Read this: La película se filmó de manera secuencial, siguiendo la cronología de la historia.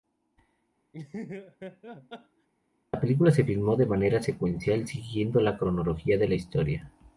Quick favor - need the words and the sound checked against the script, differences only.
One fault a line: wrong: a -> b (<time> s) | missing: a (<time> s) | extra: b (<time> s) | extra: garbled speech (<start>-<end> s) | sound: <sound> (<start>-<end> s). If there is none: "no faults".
sound: laugh (0.9-2.5 s)